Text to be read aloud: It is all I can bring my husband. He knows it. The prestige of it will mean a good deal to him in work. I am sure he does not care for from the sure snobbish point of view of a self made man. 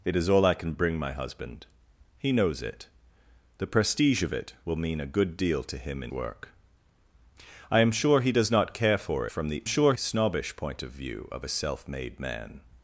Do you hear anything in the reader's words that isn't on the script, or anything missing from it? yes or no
no